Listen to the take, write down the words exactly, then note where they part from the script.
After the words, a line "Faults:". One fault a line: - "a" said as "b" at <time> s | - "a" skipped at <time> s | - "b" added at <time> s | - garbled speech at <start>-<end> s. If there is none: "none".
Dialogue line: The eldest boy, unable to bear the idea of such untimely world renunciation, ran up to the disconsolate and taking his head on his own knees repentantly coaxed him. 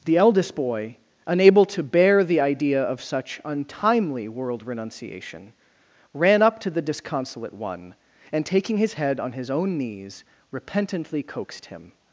The eldest boy, unable to bear the idea of such untimely world renunciation, ran up to the disconsolate one and taking his head on his own knees repentantly coaxed him.
Faults:
- "one" added at 7.5 s